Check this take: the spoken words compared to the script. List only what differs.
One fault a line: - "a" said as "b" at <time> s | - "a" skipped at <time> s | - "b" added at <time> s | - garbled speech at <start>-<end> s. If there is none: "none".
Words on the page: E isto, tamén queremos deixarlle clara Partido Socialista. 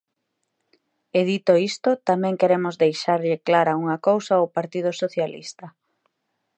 - "dito" added at 1.3 s
- "unha cousa ao" added at 3.8 s